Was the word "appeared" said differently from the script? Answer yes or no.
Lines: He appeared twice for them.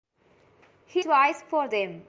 yes